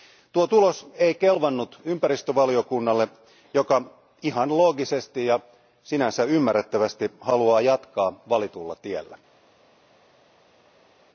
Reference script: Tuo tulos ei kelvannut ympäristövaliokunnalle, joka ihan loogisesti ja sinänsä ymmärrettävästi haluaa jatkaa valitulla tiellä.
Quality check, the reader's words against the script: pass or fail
pass